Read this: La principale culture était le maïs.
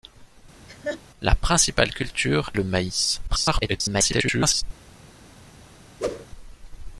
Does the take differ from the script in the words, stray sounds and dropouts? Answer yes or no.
yes